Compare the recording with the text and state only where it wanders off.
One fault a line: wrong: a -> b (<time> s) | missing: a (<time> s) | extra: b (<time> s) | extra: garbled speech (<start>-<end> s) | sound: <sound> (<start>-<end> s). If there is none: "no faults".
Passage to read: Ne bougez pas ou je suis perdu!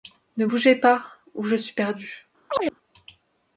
sound: chirp (2.5-2.8 s)